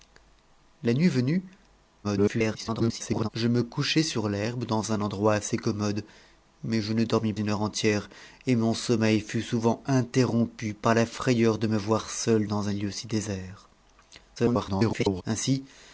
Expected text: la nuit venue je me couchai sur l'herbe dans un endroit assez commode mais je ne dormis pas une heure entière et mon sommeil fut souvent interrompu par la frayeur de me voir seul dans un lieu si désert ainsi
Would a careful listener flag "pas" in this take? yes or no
yes